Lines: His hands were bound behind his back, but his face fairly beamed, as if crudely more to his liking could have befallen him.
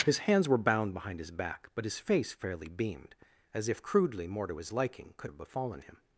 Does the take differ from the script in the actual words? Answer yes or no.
no